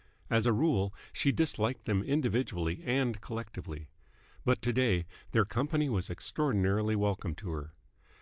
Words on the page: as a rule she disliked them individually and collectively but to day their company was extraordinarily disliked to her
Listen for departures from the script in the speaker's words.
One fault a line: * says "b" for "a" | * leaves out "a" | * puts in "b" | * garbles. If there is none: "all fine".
* says "welcome" for "disliked"